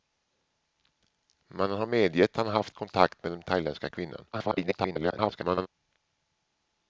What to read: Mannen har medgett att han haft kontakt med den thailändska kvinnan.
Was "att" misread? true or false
true